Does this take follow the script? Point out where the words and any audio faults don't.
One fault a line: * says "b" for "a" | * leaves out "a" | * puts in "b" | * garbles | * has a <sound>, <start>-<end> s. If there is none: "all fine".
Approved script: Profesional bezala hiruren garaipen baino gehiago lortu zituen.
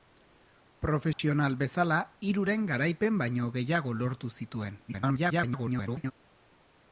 * has a dropout, 1.1-1.2 s
* garbles